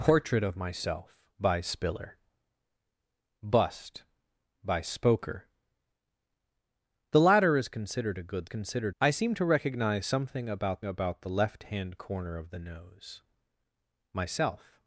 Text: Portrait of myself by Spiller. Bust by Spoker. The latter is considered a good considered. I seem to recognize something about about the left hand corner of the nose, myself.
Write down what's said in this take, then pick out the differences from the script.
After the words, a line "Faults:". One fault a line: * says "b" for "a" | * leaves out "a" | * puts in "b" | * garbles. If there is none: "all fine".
Portrait of myself by Spiller. Bust by Spoker. The latter is considered a good considered. I seem to recognize something about about the left hand corner of the nose, myself.
Faults:
all fine